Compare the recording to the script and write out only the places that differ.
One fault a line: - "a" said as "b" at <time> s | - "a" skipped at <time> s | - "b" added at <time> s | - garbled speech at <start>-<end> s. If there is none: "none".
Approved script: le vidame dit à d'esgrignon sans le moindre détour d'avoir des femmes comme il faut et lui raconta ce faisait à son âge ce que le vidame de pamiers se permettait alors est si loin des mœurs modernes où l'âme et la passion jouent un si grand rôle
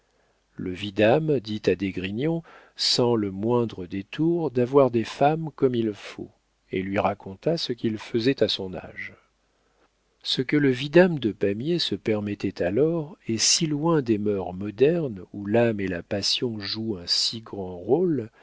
- "qu'il" added at 7.7 s